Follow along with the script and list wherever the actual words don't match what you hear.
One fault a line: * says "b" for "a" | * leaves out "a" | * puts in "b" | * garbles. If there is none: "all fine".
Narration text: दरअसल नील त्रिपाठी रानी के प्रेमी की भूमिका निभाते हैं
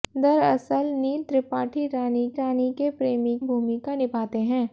* puts in "रानी"
* leaves out "की"